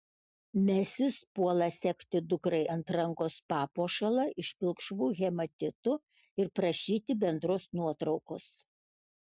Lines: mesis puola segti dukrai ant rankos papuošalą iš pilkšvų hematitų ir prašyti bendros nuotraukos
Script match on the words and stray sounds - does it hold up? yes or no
yes